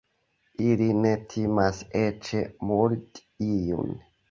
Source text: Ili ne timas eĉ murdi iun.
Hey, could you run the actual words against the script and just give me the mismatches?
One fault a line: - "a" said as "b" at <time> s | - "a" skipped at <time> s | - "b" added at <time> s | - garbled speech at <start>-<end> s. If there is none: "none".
none